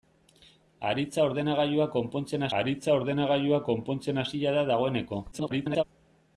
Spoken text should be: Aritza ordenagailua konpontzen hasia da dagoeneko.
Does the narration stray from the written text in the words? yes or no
yes